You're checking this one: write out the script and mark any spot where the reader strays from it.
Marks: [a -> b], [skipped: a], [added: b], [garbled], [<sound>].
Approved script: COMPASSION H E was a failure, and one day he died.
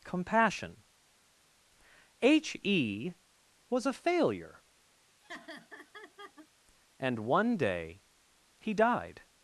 COMPASSION H E was a failure, [laugh] and one day he died.